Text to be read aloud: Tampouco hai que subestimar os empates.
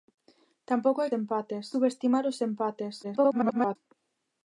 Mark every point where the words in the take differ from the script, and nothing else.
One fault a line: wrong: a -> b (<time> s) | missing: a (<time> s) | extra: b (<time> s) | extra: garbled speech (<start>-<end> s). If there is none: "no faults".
wrong: que -> empates (1.2 s)
extra: garbled speech (3.0-3.8 s)